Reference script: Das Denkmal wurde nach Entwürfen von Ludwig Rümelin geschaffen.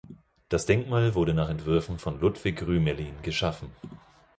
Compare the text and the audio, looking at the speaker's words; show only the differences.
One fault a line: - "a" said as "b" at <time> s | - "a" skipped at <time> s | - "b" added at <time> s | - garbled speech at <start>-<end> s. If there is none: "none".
none